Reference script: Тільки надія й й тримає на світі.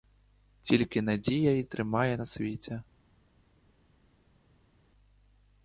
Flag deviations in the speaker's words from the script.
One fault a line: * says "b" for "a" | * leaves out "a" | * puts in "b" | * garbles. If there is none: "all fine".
* leaves out "й"